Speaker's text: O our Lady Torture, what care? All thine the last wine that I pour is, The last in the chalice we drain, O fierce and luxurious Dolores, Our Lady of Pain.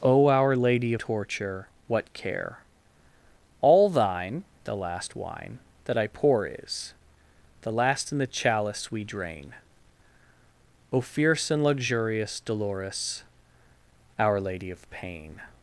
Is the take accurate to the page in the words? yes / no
yes